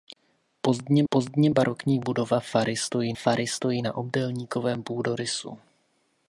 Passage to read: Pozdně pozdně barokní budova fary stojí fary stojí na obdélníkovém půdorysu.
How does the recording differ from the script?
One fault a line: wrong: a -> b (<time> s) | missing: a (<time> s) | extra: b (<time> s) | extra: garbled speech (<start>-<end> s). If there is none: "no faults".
no faults